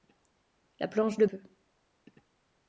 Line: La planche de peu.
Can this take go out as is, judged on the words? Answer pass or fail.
pass